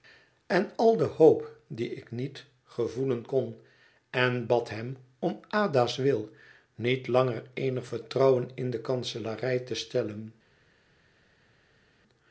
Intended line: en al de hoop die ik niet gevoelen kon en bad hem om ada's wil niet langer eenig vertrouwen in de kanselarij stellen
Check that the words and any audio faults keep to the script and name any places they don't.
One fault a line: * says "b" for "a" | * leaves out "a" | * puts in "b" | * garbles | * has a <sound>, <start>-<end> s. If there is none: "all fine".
* puts in "te"